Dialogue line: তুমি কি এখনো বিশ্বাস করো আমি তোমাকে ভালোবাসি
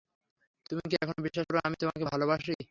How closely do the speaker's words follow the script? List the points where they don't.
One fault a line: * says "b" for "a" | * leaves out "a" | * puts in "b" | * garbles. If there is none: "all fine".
all fine